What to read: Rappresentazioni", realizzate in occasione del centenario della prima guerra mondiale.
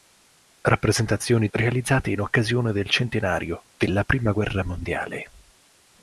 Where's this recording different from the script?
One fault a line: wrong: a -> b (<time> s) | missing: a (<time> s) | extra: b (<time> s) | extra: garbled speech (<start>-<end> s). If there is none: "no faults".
no faults